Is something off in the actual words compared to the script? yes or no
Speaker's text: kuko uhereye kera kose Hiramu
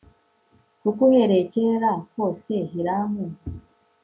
no